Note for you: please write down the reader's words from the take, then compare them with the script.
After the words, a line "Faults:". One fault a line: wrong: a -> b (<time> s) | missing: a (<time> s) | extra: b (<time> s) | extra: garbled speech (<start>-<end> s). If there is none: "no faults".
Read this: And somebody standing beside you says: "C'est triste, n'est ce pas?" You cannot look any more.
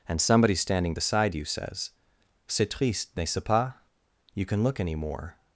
And somebody standing beside you says: "C'est triste, n'est ce pas?" You can look any more.
Faults:
wrong: cannot -> can (4.5 s)